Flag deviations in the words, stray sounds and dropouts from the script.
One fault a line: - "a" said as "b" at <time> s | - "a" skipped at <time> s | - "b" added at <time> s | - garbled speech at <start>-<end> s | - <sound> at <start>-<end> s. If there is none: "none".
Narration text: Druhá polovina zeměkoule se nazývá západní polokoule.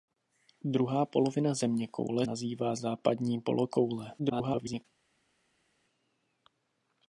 - "se" skipped at 2.2 s
- garbled speech at 4.2-4.9 s